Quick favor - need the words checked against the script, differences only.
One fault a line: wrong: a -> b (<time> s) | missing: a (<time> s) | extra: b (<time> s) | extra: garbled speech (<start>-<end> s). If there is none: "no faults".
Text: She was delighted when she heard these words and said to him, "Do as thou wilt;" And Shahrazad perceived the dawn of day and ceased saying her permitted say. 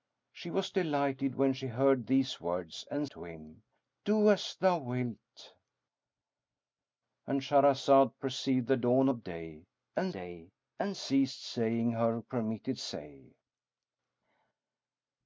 missing: said (3.1 s)
extra: day and (10.1 s)